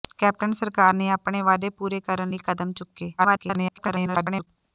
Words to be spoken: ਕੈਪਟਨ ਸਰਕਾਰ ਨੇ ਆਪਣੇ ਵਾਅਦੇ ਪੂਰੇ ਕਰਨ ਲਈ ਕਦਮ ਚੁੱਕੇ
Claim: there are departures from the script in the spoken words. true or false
true